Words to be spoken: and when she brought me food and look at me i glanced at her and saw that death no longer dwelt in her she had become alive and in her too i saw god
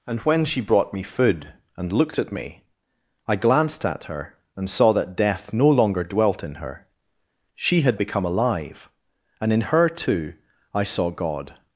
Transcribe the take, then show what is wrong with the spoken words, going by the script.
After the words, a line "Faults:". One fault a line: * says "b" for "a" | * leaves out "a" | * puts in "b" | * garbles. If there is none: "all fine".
and when she brought me food and looked at me i glanced at her and saw that death no longer dwelt in her she had become alive and in her too i saw god
Faults:
* says "looked" for "look"